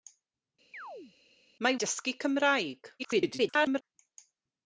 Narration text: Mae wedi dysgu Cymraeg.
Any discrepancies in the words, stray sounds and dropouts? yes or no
yes